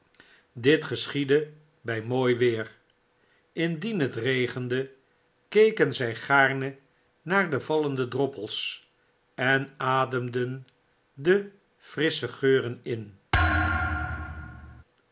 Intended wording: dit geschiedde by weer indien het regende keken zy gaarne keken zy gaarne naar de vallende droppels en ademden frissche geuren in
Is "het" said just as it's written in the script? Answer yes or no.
yes